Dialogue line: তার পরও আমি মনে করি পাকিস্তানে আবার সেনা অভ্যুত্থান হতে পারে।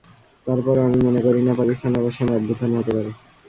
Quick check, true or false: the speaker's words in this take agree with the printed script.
false